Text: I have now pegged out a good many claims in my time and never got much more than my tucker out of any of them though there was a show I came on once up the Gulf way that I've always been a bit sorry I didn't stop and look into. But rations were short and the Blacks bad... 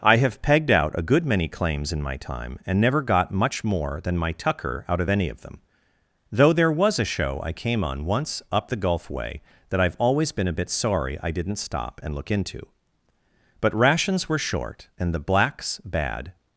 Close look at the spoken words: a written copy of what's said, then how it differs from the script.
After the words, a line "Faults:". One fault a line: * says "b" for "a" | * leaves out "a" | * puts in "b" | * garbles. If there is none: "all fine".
I have pegged out a good many claims in my time and never got much more than my tucker out of any of them though there was a show I came on once up the Gulf way that I've always been a bit sorry I didn't stop and look into. But rations were short and the Blacks bad...
Faults:
* leaves out "now"